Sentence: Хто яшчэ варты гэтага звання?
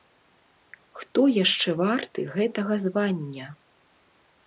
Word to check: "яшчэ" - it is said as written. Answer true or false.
true